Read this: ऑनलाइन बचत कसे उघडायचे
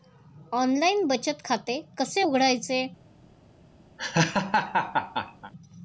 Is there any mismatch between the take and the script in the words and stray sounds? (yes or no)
yes